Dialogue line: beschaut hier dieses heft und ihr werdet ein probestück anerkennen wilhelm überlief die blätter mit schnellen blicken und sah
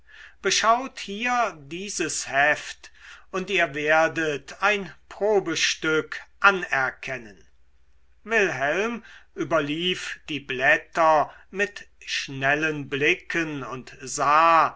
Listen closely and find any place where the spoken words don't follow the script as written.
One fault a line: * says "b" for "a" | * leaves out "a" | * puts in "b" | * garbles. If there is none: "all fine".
all fine